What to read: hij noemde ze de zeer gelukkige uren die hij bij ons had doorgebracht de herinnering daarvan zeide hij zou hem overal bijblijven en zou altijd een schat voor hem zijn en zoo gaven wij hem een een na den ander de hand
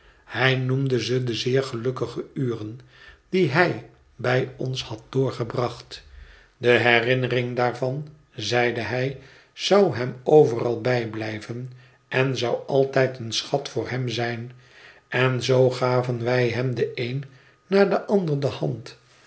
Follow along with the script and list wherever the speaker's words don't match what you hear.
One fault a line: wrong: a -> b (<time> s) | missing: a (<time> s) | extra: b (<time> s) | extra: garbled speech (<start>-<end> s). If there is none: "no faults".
wrong: een -> de (16.7 s)